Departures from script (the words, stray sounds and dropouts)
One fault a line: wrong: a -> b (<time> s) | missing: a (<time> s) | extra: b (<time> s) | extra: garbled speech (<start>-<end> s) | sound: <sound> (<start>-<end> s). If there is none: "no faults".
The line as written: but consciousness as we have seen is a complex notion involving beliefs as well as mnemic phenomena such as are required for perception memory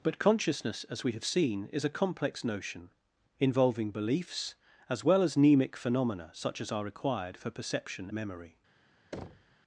sound: thud (9.1-9.6 s)